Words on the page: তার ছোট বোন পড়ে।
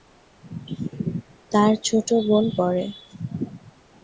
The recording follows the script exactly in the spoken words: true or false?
true